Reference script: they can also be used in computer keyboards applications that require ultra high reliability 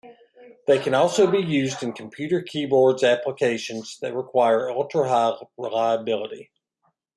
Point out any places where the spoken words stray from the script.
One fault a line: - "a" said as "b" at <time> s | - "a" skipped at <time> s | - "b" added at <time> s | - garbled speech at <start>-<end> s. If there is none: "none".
none